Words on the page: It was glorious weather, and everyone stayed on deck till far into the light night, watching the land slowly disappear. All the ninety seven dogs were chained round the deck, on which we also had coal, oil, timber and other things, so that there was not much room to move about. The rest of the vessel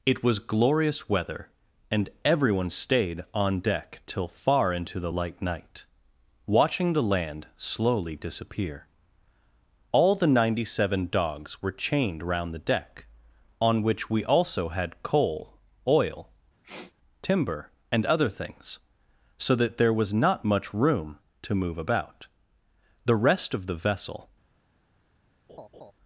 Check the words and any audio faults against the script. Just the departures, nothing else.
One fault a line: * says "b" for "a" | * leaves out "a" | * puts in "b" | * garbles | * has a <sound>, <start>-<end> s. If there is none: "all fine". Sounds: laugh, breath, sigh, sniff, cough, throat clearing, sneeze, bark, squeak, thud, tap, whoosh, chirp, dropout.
* has a sniff, 16.6-16.9 s
* has a laugh, 25.5-25.9 s